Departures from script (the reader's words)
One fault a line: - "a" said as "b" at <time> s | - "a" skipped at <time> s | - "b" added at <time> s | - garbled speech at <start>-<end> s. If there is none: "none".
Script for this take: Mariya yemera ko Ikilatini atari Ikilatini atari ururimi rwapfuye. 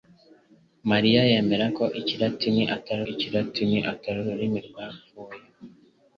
none